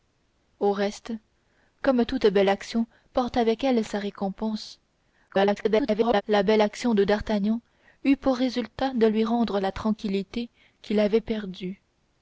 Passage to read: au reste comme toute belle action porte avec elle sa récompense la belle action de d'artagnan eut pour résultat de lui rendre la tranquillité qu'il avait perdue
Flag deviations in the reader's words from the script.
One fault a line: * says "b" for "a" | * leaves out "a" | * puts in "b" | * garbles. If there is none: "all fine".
* garbles